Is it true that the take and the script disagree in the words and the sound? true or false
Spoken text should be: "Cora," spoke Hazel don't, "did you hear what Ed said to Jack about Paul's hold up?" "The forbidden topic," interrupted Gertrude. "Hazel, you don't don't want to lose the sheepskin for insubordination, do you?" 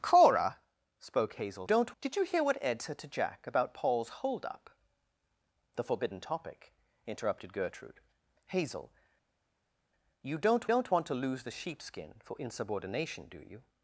false